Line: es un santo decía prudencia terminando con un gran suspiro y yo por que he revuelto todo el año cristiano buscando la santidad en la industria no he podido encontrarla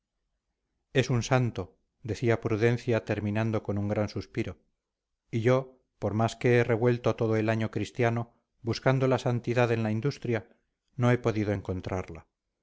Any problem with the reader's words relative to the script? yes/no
yes